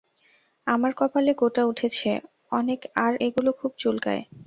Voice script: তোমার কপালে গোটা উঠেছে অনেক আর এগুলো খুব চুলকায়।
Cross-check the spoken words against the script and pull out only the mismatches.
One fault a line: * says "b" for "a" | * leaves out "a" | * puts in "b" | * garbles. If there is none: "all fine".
* says "আমার" for "তোমার"